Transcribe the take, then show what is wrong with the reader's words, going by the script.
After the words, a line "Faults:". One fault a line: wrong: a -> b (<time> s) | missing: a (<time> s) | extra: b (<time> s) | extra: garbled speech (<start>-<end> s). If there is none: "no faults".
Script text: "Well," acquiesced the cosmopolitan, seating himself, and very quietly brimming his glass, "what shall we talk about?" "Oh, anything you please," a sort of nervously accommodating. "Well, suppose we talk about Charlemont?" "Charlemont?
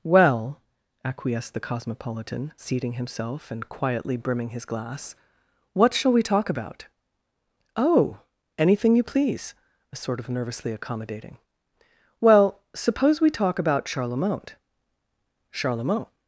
"Well," acquiesced the cosmopolitan, seating himself, and quietly brimming his glass, "what shall we talk about?" "Oh, anything you please," a sort of nervously accommodating. "Well, suppose we talk about Charlemont?" "Charlemont?
Faults:
missing: very (3.7 s)